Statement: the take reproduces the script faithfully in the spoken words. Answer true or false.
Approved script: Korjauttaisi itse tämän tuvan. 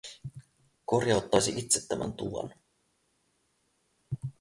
true